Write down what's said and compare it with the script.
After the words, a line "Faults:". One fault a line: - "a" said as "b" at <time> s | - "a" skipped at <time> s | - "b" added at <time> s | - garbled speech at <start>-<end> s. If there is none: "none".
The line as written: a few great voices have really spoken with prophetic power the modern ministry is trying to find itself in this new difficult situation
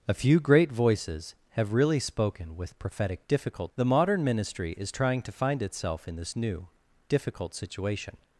a few great voices have really spoken with prophetic difficult the modern ministry is trying to find itself in this new difficult situation
Faults:
- "power" said as "difficult" at 3.3 s